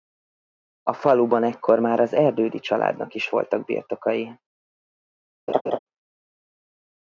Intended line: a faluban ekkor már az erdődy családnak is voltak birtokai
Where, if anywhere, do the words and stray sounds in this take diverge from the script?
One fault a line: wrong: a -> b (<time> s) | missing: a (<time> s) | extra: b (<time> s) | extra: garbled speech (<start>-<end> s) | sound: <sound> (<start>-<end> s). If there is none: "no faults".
sound: laugh (5.5-5.8 s)